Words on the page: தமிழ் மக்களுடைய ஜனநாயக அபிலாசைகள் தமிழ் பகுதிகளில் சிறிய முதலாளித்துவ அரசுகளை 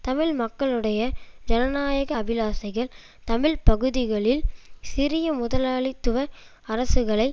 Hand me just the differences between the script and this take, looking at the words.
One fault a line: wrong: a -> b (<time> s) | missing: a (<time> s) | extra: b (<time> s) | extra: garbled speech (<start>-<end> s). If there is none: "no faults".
no faults